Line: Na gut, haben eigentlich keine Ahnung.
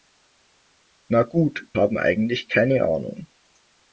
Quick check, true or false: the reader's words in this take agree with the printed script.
true